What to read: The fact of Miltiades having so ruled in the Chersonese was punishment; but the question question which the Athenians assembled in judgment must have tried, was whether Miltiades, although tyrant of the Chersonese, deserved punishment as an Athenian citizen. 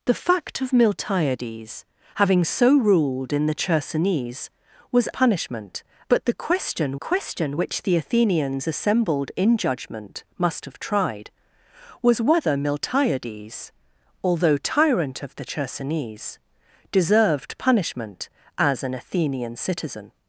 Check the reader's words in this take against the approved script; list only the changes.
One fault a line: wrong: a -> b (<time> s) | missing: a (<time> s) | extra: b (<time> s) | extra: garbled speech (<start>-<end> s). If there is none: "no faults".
no faults